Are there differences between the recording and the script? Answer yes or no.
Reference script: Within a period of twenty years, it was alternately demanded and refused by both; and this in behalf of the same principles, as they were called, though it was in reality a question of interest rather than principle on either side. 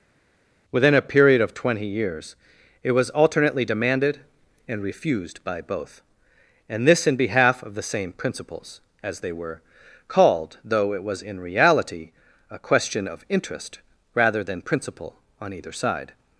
no